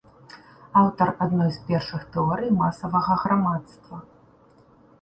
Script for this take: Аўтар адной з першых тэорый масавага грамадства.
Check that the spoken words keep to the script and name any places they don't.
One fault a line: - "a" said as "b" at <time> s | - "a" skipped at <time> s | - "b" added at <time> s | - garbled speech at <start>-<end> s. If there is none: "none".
none